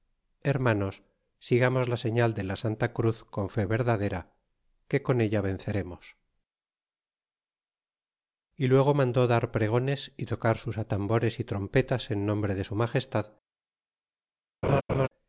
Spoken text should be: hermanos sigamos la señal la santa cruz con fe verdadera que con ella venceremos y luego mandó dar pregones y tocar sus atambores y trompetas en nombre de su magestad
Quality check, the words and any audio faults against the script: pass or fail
fail